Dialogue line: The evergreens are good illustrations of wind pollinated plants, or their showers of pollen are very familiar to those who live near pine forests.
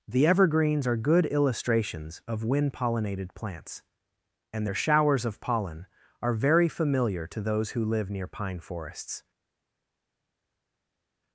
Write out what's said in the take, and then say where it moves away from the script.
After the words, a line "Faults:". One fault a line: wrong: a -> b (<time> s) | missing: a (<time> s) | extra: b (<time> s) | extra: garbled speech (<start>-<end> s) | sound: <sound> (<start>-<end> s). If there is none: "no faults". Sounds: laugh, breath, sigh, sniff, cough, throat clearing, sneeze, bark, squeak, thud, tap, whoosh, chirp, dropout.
The evergreens are good illustrations of wind pollinated plants, and their showers of pollen are very familiar to those who live near pine forests.
Faults:
wrong: or -> and (4.5 s)